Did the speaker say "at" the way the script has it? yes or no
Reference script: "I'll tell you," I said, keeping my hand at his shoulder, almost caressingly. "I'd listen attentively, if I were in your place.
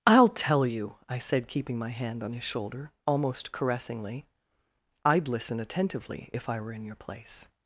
no